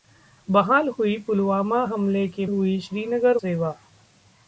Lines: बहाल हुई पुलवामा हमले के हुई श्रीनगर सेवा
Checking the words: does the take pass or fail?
pass